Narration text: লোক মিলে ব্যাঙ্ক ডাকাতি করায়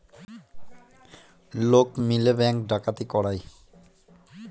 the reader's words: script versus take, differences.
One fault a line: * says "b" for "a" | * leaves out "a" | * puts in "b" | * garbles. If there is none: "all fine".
all fine